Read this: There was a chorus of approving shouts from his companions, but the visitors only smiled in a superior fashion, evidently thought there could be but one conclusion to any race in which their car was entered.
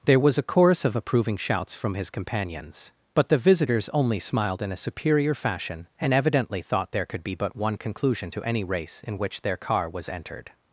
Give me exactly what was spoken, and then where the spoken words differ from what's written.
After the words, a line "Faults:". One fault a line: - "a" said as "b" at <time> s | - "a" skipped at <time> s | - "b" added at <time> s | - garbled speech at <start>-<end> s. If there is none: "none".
There was a chorus of approving shouts from his companions, but the visitors only smiled in a superior fashion, and evidently thought there could be but one conclusion to any race in which their car was entered.
Faults:
- "and" added at 6.0 s